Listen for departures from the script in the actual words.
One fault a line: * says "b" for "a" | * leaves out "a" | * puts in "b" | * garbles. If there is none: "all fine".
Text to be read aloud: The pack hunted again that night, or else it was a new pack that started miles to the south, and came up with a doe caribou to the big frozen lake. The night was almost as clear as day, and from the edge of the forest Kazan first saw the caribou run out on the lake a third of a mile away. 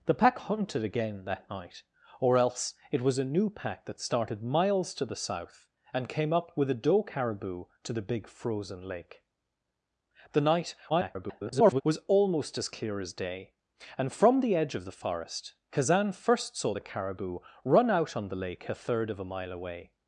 * garbles